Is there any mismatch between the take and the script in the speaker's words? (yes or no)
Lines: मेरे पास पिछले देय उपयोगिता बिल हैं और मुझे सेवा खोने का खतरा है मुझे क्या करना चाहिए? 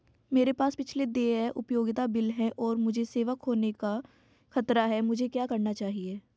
no